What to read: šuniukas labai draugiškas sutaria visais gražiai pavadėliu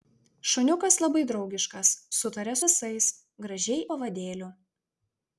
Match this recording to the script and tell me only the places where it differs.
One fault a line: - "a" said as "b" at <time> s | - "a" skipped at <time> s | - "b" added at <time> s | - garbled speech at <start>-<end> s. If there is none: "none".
none